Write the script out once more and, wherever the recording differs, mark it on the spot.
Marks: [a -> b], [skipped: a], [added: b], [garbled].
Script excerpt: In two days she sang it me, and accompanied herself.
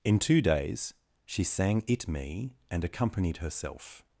In two days she sang it me, and accompanied herself.